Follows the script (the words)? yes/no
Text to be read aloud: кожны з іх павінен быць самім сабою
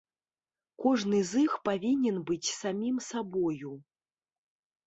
yes